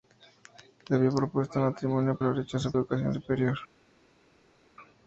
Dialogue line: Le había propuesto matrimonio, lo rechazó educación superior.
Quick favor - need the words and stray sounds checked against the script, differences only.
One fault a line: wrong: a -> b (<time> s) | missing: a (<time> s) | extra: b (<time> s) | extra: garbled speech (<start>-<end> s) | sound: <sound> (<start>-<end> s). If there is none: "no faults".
no faults